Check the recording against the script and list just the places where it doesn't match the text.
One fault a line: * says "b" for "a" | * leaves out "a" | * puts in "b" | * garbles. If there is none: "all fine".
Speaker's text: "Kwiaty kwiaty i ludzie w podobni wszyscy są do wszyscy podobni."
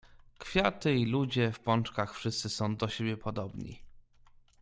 * leaves out "kwiaty"
* says "pączkach" for "podobni"
* says "siebie" for "wszyscy"